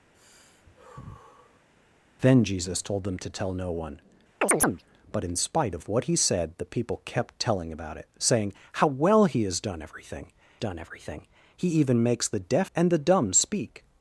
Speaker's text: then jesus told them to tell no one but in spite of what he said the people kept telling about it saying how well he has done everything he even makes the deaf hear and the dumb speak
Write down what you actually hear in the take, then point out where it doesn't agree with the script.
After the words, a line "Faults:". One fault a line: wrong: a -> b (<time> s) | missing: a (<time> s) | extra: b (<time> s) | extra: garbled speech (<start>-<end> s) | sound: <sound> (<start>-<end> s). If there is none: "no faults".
then jesus told them to tell no one but in spite of what he said the people kept telling about it saying how well he has done everything done everything he even makes the deaf and the dumb speak
Faults:
sound: sigh (0.1-1.7 s)
sound: chirp (4.4-4.8 s)
extra: done everything (10.6 s)
missing: hear (12.7 s)